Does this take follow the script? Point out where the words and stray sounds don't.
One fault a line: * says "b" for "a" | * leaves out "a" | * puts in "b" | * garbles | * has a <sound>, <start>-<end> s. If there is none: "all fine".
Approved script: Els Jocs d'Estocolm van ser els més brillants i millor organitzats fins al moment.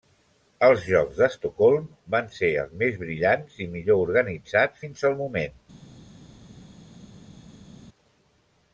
all fine